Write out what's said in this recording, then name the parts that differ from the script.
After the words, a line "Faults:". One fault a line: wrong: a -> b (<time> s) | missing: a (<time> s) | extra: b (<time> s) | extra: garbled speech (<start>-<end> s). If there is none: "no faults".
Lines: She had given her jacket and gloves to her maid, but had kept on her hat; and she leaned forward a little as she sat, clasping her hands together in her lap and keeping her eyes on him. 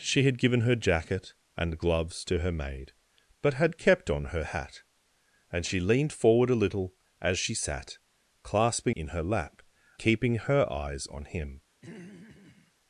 She had given her jacket and gloves to her maid, but had kept on her hat; and she leaned forward a little as she sat, clasping in her lap keeping her eyes on him.
Faults:
missing: her hands together (9.0 s)
missing: and (9.6 s)